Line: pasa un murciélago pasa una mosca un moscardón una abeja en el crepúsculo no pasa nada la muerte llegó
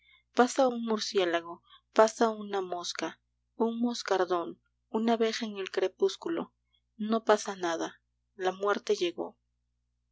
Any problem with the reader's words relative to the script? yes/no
no